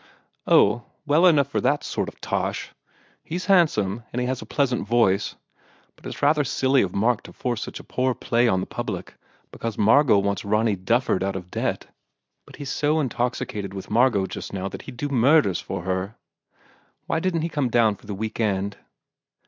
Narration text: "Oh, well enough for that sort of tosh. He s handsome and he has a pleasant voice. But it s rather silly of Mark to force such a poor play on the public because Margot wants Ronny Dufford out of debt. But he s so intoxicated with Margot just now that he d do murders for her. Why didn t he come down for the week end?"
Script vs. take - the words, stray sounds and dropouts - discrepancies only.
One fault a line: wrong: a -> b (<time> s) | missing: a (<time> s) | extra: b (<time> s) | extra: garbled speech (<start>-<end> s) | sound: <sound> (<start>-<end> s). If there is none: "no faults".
no faults